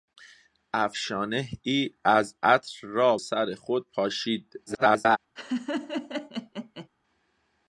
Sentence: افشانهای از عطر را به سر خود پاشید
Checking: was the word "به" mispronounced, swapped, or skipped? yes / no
yes